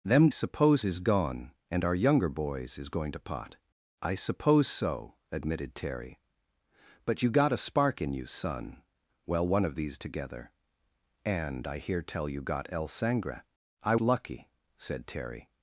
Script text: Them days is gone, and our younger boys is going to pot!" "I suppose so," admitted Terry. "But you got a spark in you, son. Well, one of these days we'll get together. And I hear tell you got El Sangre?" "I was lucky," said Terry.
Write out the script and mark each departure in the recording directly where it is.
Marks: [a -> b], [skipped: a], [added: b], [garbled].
Them [days -> suppose] is gone, and our younger boys is going to pot!" "I suppose so," admitted Terry. "But you got a spark in you, son. Well, one of these [skipped: days we'll get] together. And I hear tell you got El Sangre?" "I [skipped: was] lucky," said Terry.